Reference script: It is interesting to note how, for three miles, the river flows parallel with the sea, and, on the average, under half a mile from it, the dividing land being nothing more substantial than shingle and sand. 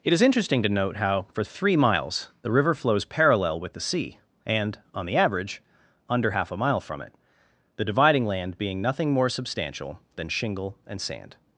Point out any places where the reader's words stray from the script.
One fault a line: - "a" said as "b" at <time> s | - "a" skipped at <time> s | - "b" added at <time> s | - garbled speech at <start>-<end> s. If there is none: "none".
none